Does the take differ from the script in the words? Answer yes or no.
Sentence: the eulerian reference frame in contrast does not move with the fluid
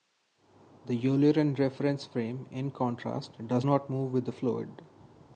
no